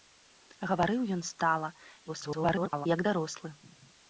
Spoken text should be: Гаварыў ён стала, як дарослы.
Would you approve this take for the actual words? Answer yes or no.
no